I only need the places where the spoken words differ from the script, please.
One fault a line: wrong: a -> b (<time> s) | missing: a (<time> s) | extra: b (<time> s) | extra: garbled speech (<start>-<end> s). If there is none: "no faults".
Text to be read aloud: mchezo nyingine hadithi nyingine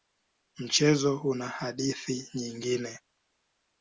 wrong: nyingine -> una (1.2 s)